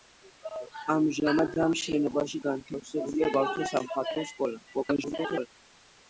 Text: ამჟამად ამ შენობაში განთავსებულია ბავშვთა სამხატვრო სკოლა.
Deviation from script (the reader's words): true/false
true